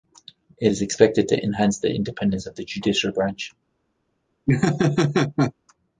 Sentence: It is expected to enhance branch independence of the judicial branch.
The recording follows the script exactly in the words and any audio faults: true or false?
false